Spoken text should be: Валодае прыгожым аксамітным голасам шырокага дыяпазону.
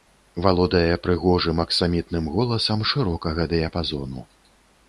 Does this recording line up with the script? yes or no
yes